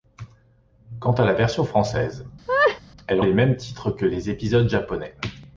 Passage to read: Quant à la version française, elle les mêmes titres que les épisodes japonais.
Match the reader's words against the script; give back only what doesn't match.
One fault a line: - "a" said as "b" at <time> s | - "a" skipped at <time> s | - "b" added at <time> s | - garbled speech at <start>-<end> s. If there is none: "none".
none